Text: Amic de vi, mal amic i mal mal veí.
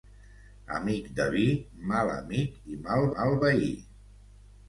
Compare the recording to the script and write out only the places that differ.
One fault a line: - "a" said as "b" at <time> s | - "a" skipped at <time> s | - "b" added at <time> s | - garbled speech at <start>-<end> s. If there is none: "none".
none